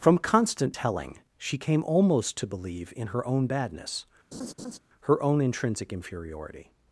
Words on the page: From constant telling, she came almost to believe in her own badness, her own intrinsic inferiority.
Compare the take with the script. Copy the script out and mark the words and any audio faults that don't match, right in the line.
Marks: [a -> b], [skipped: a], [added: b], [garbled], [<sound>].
From constant telling, she came almost to believe in her own badness, [laugh] her own intrinsic inferiority.